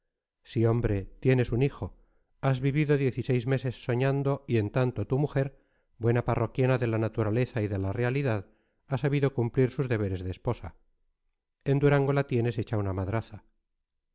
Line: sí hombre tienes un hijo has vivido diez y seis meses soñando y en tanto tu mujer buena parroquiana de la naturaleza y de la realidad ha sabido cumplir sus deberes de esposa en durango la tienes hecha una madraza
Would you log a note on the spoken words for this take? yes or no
no